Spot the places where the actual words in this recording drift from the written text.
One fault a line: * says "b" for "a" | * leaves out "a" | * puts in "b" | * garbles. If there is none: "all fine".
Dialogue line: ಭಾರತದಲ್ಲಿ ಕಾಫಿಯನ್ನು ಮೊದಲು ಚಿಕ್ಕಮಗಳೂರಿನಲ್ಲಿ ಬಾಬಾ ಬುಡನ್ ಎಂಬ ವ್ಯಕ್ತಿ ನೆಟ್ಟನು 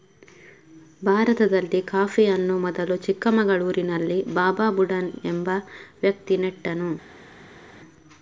all fine